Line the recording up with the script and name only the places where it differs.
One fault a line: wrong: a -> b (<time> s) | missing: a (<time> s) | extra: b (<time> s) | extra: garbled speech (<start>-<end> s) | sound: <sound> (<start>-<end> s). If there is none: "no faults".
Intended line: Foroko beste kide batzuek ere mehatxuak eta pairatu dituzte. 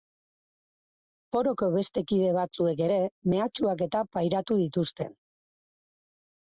no faults